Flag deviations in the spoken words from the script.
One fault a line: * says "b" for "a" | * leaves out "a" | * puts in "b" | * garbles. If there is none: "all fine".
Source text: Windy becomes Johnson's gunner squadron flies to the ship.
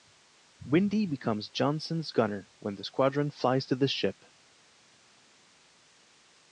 * puts in "when the"